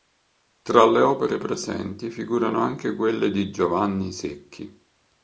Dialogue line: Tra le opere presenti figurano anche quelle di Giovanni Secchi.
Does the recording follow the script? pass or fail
pass